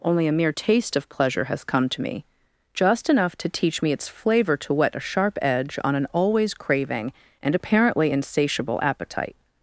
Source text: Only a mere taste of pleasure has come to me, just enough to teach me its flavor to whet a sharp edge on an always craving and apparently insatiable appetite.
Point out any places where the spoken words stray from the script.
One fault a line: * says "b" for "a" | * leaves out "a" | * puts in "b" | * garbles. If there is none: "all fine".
all fine